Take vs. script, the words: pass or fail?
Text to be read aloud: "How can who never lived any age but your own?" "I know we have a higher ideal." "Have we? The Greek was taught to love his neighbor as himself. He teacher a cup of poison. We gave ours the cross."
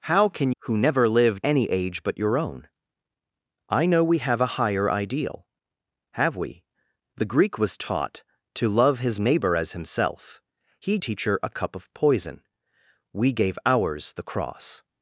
pass